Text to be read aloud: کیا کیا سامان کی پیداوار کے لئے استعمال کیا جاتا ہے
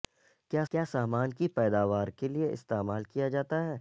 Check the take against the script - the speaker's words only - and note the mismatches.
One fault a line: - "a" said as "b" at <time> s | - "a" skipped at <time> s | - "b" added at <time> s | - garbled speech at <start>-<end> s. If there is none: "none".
none